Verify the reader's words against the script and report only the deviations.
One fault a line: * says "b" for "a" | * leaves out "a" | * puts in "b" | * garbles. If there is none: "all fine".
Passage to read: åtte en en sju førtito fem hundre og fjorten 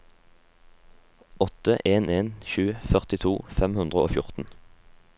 all fine